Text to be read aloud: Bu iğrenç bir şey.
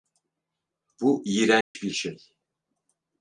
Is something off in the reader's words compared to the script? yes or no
no